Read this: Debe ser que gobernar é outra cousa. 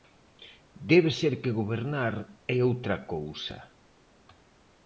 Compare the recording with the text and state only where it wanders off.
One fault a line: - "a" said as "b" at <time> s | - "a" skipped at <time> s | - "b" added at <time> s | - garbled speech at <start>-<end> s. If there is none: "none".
none